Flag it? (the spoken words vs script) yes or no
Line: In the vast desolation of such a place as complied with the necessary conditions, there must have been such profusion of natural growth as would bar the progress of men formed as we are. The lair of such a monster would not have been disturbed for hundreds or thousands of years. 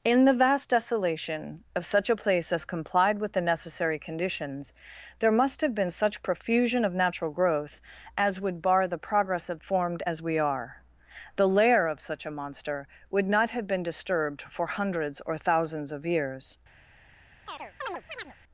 yes